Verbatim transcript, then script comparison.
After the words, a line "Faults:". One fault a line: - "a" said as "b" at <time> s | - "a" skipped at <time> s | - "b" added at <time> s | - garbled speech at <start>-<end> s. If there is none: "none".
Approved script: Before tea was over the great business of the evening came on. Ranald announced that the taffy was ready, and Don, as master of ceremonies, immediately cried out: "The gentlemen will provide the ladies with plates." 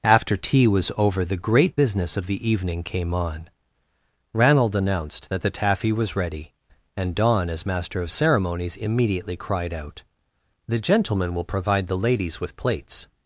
After tea was over the great business of the evening came on. Ranald announced that the taffy was ready, and Don, as master of ceremonies, immediately cried out: "The gentlemen will provide the ladies with plates."
Faults:
- "Before" said as "After" at 0.0 s